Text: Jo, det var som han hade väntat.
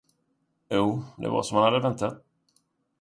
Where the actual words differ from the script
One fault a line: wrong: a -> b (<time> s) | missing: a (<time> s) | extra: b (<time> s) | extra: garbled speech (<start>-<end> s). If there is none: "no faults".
no faults